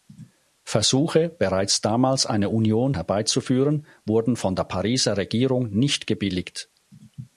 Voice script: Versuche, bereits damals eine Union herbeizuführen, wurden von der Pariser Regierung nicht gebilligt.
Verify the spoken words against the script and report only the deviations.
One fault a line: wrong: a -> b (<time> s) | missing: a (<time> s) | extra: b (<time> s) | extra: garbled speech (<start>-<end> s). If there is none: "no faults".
no faults